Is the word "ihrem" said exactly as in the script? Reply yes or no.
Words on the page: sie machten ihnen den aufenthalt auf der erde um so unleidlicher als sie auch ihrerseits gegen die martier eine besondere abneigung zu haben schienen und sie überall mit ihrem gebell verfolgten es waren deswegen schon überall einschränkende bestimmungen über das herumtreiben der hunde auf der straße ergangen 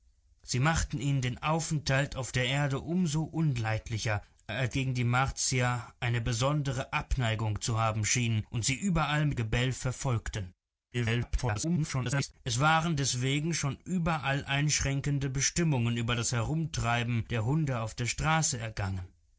no